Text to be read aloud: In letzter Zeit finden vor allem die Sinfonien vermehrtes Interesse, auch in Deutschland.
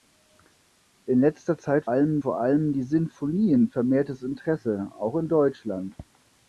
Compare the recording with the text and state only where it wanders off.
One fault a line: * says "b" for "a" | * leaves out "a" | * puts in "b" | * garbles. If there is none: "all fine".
* says "allem" for "finden"